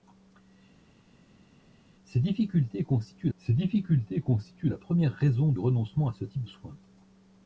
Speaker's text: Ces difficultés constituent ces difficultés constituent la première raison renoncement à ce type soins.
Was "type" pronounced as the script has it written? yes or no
yes